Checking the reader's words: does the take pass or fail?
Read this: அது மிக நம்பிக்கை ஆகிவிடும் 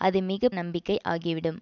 pass